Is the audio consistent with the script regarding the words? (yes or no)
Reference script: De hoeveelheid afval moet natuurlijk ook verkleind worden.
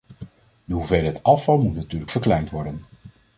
no